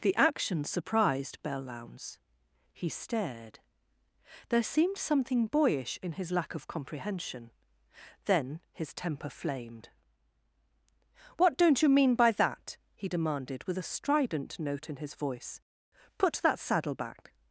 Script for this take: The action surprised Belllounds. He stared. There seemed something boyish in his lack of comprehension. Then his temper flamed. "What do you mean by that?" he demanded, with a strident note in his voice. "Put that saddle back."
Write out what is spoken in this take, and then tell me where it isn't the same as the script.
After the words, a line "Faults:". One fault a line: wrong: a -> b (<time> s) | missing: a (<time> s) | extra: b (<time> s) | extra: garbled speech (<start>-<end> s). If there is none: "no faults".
The action surprised Belllounds. He stared. There seemed something boyish in his lack of comprehension. Then his temper flamed. "What don't you mean by that?" he demanded, with a strident note in his voice. "Put that saddle back."
Faults:
wrong: do -> don't (11.6 s)